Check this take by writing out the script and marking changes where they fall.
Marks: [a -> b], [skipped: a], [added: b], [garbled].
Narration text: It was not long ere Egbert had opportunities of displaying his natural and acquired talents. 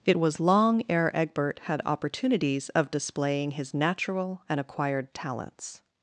It was [skipped: not] long ere Egbert had opportunities of displaying his natural and acquired talents.